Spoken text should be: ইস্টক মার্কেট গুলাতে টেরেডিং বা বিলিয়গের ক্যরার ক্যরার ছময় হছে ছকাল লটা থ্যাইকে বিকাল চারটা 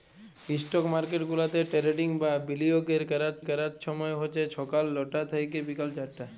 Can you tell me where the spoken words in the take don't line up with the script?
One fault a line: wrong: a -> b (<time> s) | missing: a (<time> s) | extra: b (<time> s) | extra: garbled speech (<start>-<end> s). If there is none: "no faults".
no faults